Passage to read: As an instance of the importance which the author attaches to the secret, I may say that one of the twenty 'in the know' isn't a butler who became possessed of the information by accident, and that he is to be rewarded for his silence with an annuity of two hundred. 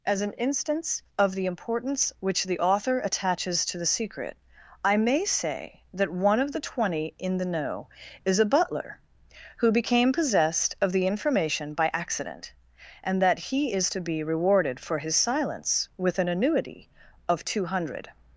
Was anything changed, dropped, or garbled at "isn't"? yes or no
yes